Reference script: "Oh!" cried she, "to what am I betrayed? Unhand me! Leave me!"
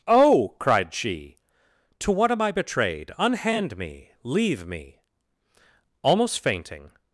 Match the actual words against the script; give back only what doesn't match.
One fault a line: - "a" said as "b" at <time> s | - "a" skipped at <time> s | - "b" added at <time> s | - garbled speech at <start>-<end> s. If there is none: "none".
- "Almost fainting" added at 6.0 s